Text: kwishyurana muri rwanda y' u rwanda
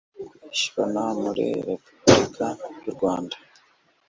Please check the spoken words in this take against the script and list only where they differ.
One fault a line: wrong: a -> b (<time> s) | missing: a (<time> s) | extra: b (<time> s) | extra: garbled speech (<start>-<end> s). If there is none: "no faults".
wrong: rwanda -> repubulika (1.7 s)